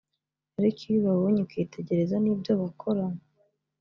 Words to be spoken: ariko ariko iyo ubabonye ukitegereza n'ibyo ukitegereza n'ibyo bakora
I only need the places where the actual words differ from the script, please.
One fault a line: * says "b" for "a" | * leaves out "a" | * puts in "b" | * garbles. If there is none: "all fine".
* leaves out "ariko"
* leaves out "ukitegereza n'ibyo"